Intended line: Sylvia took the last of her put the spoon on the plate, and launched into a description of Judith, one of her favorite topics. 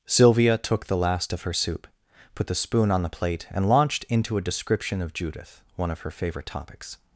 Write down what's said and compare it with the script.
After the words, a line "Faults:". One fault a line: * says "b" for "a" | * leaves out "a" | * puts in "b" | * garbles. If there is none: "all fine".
Sylvia took the last of her soup, put the spoon on the plate, and launched into a description of Judith, one of her favorite topics.
Faults:
* puts in "soup"